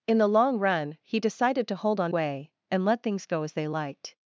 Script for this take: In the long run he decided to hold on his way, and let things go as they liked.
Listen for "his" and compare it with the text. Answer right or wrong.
wrong